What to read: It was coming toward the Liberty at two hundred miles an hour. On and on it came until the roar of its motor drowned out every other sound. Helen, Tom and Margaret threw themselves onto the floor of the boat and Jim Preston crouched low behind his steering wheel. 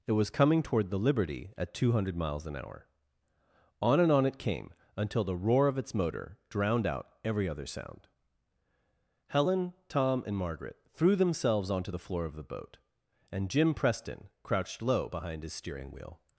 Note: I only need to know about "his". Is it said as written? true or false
true